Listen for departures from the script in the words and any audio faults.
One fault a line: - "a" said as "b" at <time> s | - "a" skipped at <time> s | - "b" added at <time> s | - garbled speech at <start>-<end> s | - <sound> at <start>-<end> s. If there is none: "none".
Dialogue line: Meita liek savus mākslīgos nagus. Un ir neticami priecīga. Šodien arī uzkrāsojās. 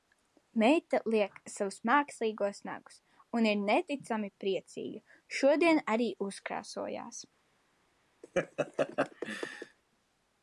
- laugh at 8.2-9.8 s